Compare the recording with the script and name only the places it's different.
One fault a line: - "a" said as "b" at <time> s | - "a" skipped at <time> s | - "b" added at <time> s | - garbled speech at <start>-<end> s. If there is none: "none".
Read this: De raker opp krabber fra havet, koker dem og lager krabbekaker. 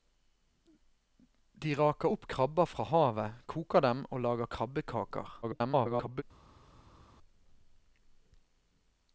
- garbled speech at 5.4-6.2 s